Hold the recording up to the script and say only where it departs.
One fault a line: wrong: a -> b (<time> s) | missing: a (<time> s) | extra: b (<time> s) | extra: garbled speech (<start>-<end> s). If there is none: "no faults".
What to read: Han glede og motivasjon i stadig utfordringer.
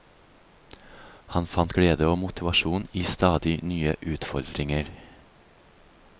extra: fant (1.6 s)
extra: nye (3.7 s)